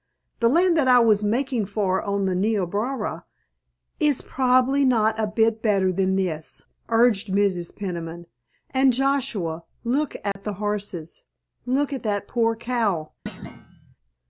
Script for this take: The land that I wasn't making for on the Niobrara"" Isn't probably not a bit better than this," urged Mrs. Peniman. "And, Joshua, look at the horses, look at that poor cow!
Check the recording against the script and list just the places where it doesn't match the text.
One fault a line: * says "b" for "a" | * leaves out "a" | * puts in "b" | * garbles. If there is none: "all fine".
* says "was" for "wasn't"
* says "Is" for "Isn't"